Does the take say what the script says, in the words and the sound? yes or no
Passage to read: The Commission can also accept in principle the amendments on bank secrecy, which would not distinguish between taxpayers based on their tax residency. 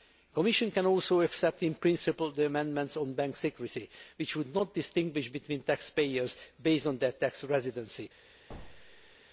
no